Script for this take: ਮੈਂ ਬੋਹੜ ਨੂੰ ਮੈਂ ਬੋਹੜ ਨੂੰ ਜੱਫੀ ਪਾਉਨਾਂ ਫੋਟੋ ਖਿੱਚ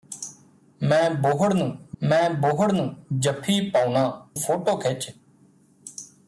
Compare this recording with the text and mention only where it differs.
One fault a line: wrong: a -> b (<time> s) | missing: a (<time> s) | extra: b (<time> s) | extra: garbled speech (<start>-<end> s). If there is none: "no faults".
no faults